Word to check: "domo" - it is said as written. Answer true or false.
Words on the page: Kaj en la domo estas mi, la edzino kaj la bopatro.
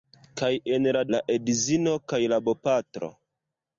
false